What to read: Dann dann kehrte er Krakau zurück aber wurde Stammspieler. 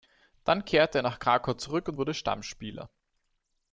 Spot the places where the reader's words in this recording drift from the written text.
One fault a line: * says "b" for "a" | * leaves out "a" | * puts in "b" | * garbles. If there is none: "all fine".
* leaves out "dann"
* puts in "nach"
* says "und" for "aber"